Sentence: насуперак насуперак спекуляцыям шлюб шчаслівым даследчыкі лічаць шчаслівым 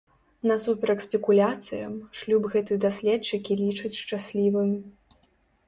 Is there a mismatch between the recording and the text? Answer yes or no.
yes